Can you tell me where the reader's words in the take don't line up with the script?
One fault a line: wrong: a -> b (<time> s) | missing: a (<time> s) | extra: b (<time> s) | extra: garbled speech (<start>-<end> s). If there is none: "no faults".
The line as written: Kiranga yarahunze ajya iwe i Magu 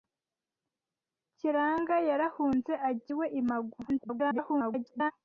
extra: garbled speech (3.9-5.1 s)